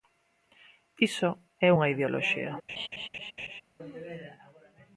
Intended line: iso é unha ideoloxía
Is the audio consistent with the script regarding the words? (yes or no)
yes